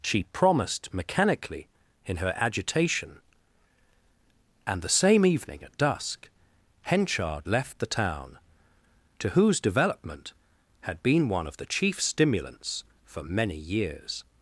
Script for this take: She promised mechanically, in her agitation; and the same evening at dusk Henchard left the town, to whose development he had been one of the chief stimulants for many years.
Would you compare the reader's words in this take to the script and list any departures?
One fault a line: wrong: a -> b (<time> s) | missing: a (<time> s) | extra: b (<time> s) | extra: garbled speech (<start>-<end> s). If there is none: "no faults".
missing: he (10.3 s)